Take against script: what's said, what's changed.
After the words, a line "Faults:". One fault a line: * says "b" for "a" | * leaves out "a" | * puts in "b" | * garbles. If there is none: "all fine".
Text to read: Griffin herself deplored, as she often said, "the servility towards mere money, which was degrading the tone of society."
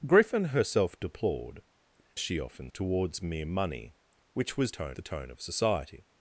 Griffin herself deplored, she often towards mere money, which was tone the tone of society."
Faults:
* leaves out "as"
* leaves out "said the servility"
* says "tone" for "degrading"